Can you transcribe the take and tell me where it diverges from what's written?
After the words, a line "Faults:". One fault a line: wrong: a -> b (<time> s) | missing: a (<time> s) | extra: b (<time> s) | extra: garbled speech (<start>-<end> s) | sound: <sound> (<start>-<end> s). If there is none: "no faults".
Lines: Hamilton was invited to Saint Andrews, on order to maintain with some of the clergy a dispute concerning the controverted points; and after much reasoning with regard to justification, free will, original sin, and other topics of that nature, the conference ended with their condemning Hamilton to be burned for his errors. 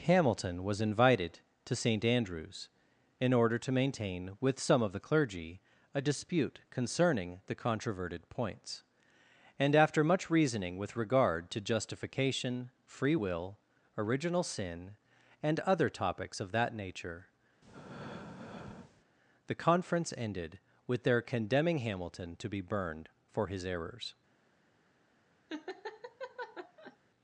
Hamilton was invited to Saint Andrews, in order to maintain with some of the clergy a dispute concerning the controverted points; and after much reasoning with regard to justification, free will, original sin, and other topics of that nature, the conference ended with their condemning Hamilton to be burned for his errors.
Faults:
wrong: on -> in (3.2 s)
sound: breath (17.6-19.0 s)
sound: laugh (25.5-27.0 s)